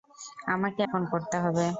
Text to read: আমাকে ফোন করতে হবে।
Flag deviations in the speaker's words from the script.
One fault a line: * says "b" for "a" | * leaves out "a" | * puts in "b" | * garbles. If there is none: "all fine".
all fine